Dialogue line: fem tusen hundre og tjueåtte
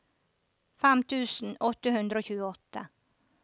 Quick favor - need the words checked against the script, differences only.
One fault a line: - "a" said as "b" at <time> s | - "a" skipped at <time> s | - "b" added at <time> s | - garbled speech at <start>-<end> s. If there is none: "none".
- "åtte" added at 1.7 s